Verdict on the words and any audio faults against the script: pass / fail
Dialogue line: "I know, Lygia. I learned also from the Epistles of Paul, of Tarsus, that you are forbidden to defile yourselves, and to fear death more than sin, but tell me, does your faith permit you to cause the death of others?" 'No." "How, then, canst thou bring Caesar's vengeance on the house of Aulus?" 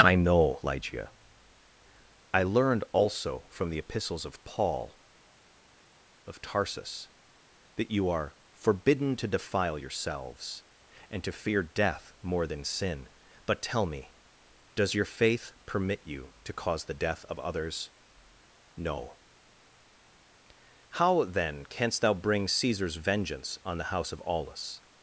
pass